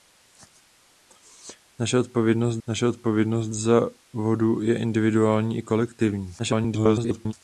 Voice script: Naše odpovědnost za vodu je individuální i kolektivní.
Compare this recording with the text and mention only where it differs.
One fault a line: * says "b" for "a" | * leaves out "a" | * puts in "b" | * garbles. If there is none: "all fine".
* puts in "naše odpovědnost"
* garbles